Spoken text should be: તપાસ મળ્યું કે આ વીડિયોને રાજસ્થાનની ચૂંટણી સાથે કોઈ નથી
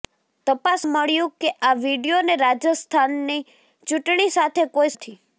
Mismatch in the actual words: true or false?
false